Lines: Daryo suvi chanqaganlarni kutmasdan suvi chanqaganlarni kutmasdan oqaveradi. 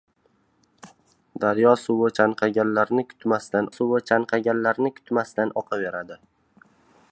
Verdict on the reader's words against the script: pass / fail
pass